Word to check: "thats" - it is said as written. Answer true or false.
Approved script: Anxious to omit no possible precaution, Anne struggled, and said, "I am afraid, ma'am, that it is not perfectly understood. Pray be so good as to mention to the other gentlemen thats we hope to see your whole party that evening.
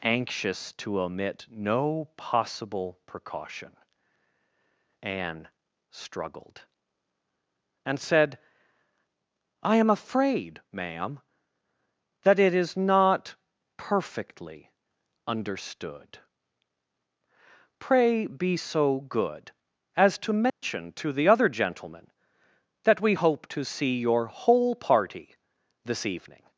false